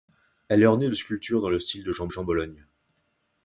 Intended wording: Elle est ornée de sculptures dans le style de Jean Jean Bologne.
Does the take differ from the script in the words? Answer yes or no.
no